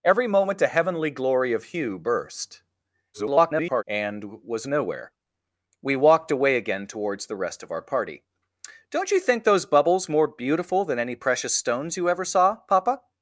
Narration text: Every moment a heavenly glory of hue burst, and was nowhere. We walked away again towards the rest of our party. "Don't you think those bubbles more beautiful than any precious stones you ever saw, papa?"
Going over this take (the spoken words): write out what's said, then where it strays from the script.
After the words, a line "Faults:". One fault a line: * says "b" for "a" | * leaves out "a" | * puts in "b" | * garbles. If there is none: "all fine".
Every moment a heavenly glory of hue burst, [garbled] and was nowhere. We walked away again towards the rest of our party. "Don't you think those bubbles more beautiful than any precious stones you ever saw, papa?"
Faults:
* garbles